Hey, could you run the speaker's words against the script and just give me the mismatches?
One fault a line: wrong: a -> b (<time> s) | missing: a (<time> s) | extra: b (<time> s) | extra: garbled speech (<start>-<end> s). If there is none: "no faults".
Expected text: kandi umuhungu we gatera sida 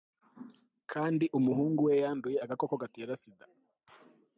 extra: yanduye agakoko (2.0 s)